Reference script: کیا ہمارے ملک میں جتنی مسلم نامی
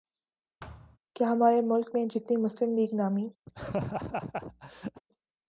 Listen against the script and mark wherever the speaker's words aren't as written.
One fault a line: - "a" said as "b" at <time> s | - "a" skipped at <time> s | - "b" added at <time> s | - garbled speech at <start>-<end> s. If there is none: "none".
- "لیگ" added at 2.7 s